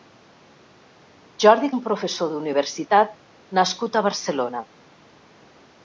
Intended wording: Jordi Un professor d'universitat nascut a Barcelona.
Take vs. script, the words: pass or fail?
pass